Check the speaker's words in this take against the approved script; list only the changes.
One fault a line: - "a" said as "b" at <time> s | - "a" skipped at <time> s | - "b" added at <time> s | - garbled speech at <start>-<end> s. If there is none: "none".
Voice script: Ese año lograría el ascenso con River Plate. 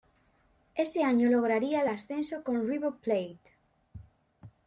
none